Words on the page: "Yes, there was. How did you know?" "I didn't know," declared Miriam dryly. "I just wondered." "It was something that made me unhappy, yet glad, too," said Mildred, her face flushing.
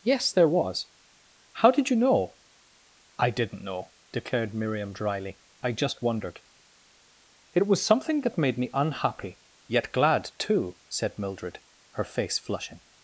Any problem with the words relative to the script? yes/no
no